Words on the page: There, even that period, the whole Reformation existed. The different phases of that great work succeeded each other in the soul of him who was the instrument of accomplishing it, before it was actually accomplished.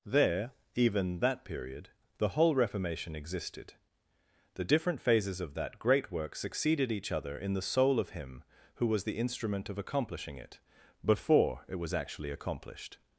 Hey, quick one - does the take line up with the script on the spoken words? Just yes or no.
yes